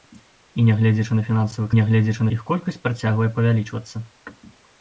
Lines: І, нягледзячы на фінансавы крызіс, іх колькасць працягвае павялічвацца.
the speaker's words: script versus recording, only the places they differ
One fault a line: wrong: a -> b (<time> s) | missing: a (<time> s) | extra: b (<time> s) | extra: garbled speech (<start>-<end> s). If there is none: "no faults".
wrong: крызіс -> нягледзячы (1.8 s)